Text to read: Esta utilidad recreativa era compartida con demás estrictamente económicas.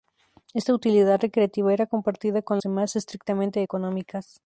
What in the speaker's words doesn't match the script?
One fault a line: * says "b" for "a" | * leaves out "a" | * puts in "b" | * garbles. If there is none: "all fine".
all fine